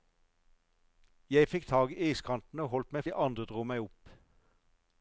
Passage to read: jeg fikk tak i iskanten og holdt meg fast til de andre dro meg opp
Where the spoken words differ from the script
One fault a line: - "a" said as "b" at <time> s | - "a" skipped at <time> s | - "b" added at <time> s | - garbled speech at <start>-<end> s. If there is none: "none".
- "fast til" skipped at 3.0 s